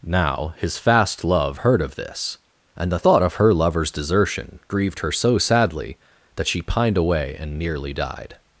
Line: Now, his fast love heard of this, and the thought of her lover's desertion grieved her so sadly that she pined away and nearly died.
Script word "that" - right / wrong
right